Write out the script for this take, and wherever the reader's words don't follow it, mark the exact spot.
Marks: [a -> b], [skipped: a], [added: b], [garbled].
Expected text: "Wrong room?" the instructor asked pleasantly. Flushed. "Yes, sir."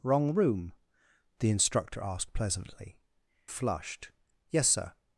"Wrong room?" the instructor asked pleasantly. Flushed. "Yes, sir."